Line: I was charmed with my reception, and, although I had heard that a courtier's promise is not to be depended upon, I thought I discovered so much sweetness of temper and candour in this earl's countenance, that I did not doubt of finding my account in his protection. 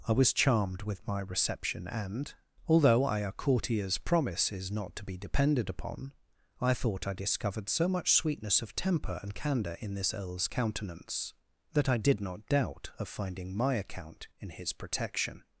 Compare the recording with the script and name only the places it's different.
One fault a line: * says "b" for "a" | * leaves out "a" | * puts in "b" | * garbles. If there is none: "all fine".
* leaves out "had heard that"